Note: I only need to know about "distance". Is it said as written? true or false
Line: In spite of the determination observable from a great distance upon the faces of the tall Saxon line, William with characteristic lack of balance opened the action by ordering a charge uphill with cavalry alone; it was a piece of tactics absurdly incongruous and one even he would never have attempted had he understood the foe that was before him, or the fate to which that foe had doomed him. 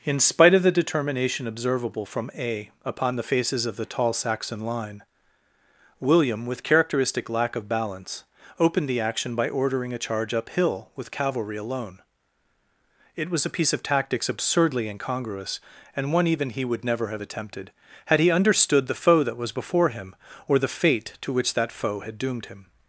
false